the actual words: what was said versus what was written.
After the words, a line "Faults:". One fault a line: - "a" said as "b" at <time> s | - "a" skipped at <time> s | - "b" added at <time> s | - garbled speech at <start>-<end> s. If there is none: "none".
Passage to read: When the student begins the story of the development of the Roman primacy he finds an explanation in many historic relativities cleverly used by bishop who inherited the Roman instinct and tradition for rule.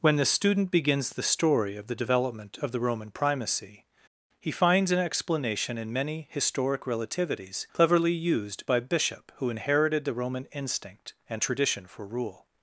When the student begins the story of the development of the Roman primacy he finds an explanation in many historic relativities cleverly used by bishop who inherited the Roman instinct and tradition for rule.
Faults:
none